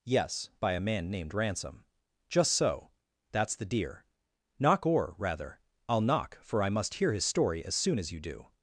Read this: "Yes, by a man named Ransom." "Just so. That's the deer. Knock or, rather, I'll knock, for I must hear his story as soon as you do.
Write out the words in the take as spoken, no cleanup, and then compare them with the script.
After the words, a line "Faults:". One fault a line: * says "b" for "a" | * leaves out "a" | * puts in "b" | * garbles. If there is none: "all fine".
"Yes, by a man named Ransom." "Just so. That's the deer. Knock or, rather, I'll knock, for I must hear his story as soon as you do.
Faults:
all fine